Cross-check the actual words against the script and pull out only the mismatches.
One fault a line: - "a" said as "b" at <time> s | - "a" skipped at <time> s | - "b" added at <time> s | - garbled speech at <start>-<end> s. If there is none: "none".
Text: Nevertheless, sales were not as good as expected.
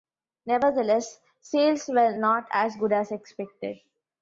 none